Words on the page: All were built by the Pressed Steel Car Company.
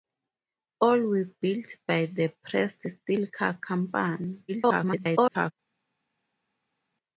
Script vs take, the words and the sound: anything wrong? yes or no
yes